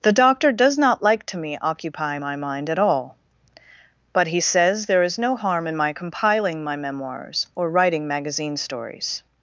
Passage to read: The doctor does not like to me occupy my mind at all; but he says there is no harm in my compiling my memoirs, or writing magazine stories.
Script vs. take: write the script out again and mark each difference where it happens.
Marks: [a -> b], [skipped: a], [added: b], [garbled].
The doctor does not like to me occupy my mind at all; but he says there is no harm in my compiling my memoirs, or writing magazine stories.